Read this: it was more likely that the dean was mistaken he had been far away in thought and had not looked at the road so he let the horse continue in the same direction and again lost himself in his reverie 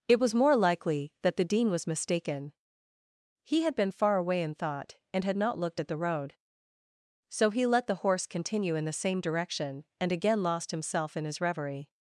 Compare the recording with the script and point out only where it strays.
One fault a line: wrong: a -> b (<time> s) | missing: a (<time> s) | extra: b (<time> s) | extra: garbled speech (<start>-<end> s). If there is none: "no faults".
no faults